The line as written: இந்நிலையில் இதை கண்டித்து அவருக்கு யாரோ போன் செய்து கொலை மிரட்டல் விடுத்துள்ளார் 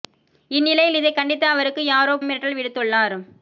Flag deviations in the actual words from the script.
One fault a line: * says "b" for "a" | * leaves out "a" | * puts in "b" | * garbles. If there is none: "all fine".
* leaves out "போன் செய்து கொலை"